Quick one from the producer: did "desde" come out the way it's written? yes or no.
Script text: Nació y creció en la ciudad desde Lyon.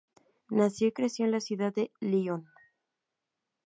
no